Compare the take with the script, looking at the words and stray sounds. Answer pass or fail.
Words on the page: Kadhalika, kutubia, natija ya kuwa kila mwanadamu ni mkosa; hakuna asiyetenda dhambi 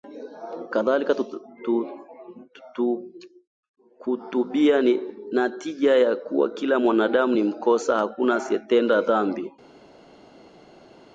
fail